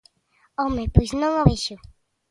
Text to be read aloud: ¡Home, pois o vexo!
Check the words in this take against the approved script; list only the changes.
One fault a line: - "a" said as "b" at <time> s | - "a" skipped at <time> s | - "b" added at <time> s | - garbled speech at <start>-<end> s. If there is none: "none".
- "non" added at 1.2 s